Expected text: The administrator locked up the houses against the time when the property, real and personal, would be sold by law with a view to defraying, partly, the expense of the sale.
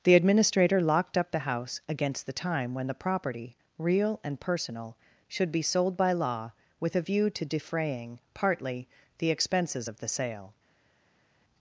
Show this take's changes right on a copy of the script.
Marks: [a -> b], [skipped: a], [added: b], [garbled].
The administrator locked up the [houses -> house] against the time when the property, real and personal, [would -> should] be sold by law with a view to defraying, partly, the [expense -> expenses] of the sale.